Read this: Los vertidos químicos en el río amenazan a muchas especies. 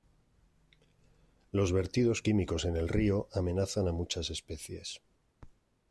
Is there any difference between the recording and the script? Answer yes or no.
no